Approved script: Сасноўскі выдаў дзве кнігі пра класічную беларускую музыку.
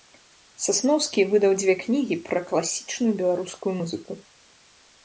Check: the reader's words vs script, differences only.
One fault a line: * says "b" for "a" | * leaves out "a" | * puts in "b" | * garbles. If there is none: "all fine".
all fine